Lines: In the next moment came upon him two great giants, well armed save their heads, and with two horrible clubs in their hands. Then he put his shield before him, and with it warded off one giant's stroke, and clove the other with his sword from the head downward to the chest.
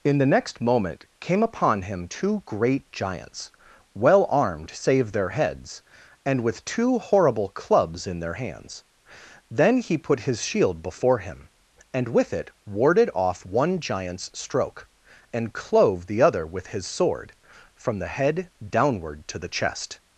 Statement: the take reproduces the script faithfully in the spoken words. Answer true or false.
true